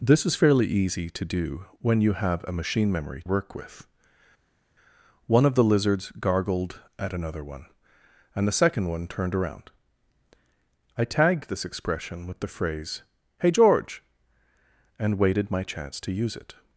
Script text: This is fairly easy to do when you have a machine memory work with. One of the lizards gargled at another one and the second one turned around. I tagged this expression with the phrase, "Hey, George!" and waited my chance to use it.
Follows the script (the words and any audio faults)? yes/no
yes